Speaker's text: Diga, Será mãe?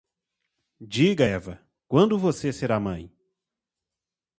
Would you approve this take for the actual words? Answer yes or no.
no